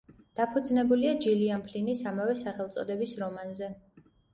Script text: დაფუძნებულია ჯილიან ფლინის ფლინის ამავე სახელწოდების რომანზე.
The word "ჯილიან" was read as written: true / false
true